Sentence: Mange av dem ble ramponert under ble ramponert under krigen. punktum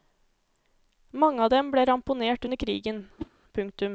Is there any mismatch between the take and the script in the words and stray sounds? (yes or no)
yes